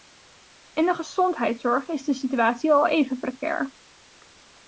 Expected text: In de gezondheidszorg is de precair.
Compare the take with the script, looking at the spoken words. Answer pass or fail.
fail